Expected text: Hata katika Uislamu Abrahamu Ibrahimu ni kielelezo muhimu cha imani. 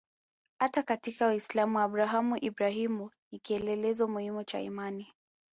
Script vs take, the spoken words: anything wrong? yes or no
no